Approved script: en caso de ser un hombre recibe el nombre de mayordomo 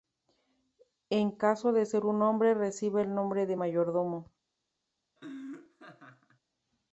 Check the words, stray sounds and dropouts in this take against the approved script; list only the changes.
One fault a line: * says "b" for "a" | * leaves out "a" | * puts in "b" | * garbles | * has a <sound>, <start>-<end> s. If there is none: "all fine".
* has a laugh, 5.2-6.4 s